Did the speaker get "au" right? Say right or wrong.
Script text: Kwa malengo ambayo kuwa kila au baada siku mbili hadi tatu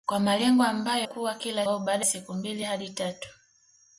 right